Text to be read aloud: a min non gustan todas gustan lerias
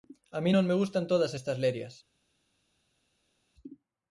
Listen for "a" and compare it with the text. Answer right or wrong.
right